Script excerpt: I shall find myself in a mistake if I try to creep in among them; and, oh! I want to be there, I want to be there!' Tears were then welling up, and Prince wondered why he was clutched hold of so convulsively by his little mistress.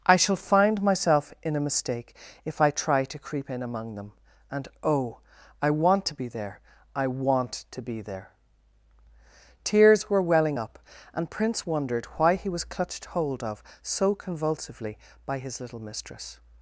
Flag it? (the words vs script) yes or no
yes